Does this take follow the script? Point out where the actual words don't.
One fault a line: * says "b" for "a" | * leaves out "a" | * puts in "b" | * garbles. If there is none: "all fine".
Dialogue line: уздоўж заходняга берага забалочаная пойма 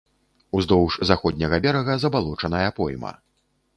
all fine